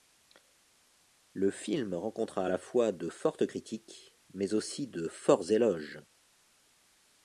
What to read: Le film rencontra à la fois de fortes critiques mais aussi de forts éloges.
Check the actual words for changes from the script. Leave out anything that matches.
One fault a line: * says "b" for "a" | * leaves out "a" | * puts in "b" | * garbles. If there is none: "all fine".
all fine